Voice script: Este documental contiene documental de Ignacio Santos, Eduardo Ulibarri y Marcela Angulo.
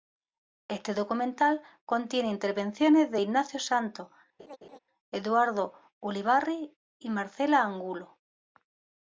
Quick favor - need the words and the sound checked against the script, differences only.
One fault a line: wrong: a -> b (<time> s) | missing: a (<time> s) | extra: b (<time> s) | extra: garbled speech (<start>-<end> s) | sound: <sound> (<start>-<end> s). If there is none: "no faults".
wrong: documental -> intervenciones (2.3 s)
sound: laugh (4.4-4.8 s)